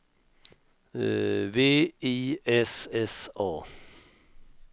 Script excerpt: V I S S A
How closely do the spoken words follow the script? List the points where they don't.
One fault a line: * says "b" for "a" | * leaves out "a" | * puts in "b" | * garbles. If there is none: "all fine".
all fine